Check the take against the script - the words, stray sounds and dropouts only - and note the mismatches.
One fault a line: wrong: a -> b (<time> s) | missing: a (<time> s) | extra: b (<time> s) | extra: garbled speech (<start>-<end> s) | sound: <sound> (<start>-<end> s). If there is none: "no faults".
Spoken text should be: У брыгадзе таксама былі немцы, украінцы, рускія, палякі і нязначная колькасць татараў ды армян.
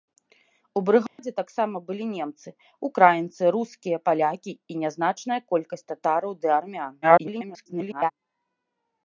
sound: dropout (1.1-1.2 s)
extra: garbled speech (7.0-8.1 s)